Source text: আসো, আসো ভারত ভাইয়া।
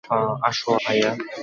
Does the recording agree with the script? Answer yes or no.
no